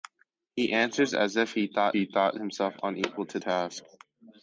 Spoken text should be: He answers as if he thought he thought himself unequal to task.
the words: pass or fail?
pass